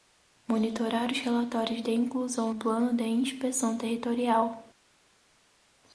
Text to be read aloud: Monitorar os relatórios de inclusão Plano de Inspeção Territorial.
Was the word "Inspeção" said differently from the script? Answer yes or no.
no